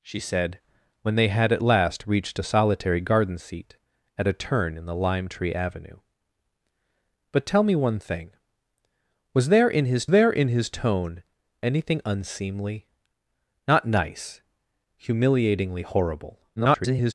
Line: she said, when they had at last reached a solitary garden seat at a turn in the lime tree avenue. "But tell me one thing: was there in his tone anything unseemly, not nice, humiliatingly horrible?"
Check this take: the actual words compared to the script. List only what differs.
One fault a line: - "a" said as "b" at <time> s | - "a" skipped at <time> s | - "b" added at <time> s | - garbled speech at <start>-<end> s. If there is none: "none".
- "there in his" added at 10.1 s
- garbled speech at 16.6-17.1 s